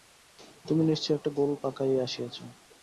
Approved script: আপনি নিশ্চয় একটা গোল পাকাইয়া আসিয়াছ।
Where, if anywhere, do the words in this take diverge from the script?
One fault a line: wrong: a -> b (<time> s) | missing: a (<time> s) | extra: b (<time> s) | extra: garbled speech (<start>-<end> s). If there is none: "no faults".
wrong: আপনি -> তুমি (0.7 s)